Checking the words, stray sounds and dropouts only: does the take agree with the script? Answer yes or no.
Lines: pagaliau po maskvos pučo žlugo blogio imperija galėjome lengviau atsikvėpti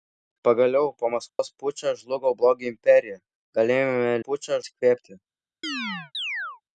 no